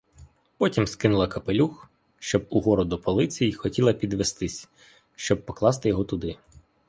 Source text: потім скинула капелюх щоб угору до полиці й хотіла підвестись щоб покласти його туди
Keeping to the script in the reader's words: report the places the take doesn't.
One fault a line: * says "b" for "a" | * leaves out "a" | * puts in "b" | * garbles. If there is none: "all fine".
all fine